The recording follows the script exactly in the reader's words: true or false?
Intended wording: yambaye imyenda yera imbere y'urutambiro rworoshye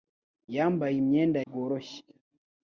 false